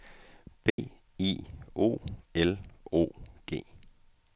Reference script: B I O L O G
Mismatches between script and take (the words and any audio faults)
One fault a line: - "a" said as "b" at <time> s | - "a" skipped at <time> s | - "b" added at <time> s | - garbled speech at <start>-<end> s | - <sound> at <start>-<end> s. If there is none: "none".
- dropout at 0.7-0.8 s